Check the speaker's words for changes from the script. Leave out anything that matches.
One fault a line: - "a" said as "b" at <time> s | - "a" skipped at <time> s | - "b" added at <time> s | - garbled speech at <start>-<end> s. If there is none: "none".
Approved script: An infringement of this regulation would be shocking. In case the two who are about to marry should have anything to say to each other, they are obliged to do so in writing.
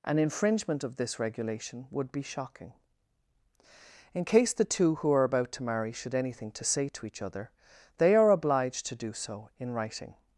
- "have" skipped at 6.2 s